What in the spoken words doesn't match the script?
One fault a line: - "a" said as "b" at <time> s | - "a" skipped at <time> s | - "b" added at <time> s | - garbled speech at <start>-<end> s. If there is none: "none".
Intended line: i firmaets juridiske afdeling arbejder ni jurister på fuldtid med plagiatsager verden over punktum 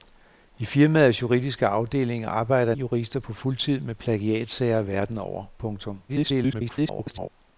- "ni" skipped at 2.8 s
- garbled speech at 6.1-7.3 s